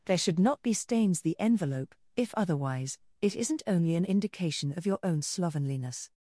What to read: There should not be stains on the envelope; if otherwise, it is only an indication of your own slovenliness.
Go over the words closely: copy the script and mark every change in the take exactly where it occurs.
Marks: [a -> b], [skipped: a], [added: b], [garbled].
There should not be stains [skipped: on] the envelope; if otherwise, it [is -> isn't] only an indication of your own slovenliness.